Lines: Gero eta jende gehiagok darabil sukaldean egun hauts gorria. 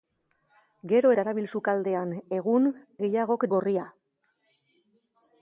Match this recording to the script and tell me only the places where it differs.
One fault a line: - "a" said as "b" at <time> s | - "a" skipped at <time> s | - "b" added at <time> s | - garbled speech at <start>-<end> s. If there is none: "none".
- "eta jende gehiagok" skipped at 1.1 s
- "hauts" said as "gehiagok" at 3.0 s